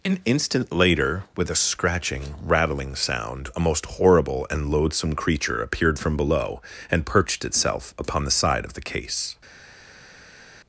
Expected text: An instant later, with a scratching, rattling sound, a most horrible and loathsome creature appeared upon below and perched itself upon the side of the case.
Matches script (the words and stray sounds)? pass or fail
fail